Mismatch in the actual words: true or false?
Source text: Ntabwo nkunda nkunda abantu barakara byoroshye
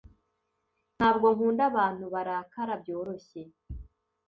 true